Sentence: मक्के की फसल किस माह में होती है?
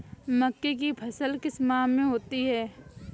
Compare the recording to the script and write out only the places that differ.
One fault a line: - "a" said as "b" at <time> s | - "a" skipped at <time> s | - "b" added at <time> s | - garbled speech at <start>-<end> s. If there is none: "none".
none